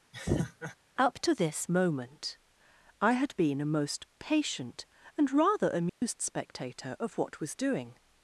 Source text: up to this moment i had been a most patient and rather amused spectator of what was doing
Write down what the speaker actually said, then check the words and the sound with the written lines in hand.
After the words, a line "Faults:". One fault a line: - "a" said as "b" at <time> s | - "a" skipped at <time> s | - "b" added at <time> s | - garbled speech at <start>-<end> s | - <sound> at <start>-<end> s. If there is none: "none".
up to this moment i had been a most patient and rather amused spectator of what was doing
Faults:
- laugh at 0.1-0.7 s
- dropout at 5.9-6.0 s